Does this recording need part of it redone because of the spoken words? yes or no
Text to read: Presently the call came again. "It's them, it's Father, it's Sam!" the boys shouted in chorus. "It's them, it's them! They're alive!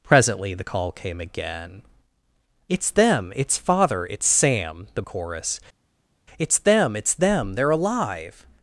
yes